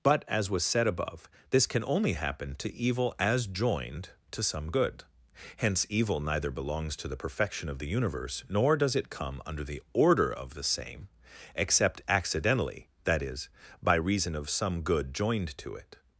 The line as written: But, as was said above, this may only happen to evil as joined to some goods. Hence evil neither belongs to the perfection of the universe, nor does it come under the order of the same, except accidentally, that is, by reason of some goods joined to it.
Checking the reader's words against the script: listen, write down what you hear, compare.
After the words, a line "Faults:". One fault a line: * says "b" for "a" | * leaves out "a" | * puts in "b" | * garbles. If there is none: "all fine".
But, as was said above, this can only happen to evil as joined to some good. Hence evil neither belongs to the perfection of the universe, nor does it come under the order of the same, except accidentally, that is, by reason of some good joined to it.
Faults:
* says "can" for "may"
* says "good" for "goods"
* says "good" for "goods"